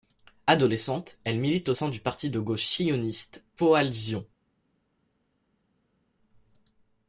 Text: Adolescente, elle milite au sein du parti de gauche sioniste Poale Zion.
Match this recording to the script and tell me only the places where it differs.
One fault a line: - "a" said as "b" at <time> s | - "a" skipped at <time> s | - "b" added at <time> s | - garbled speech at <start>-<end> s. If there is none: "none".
none